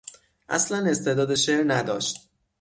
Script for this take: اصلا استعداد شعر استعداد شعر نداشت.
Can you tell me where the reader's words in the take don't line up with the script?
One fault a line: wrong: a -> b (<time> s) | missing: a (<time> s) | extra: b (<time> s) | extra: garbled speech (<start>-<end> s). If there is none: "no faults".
missing: استعداد شعر (1.6 s)